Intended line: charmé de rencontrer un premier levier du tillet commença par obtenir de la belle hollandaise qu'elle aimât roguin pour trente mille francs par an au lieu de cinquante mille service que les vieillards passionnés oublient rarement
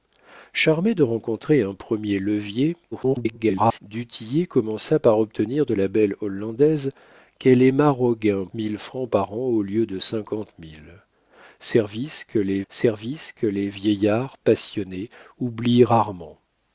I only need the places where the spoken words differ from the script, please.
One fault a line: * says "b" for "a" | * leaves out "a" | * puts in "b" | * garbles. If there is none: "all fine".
* garbles
* leaves out "pour trente"
* puts in "service que les"